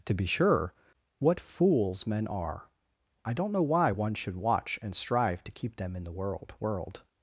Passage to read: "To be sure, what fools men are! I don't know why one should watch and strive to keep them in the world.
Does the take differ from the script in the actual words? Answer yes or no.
yes